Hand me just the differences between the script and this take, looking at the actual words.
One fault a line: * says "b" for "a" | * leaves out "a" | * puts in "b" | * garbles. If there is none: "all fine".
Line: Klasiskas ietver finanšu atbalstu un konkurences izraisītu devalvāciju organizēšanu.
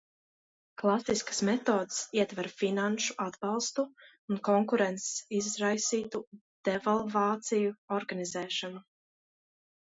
* puts in "metodes"